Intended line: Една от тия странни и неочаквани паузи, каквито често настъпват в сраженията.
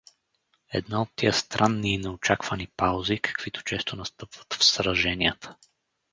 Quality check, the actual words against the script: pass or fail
pass